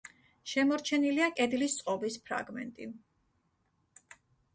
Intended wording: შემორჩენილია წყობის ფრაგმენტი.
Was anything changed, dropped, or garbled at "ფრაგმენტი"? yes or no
no